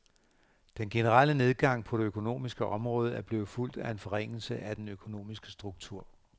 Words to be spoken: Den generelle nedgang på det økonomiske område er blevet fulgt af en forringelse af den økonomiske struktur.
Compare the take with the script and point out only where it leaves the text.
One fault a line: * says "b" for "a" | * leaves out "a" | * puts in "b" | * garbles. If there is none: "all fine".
all fine